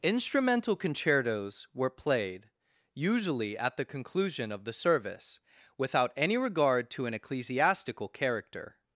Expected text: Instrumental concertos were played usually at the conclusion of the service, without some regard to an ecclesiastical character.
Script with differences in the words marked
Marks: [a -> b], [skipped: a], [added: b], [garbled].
Instrumental concertos were played usually at the conclusion of the service, without [some -> any] regard to an ecclesiastical character.